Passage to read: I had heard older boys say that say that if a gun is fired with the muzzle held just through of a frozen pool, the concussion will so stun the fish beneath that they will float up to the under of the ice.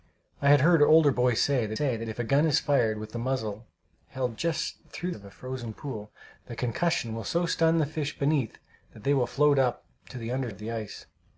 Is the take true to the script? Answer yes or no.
yes